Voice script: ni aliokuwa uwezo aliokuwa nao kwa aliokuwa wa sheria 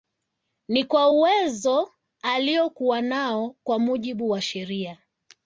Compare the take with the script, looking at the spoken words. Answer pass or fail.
fail